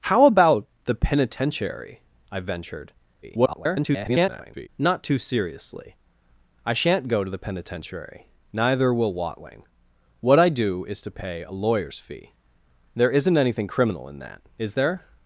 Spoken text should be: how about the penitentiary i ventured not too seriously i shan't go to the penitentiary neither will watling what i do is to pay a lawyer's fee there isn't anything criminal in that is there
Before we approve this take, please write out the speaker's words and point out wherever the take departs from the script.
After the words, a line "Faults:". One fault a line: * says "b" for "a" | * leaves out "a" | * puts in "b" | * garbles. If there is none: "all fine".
how about the penitentiary i ventured [garbled] not too seriously i shan't go to the penitentiary neither will watling what i do is to pay a lawyer's fee there isn't anything criminal in that is there
Faults:
* garbles